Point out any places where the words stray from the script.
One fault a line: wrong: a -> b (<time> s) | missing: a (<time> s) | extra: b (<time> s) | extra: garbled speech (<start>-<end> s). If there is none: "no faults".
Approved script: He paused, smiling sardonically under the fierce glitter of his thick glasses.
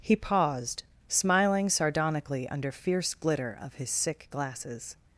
missing: the (2.7 s)
wrong: thick -> sick (3.9 s)